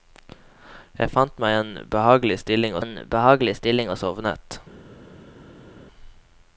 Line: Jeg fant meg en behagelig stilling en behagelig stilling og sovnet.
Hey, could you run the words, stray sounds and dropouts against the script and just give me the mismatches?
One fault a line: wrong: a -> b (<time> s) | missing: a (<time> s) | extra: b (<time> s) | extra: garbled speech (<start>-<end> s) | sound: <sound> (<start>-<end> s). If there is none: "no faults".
no faults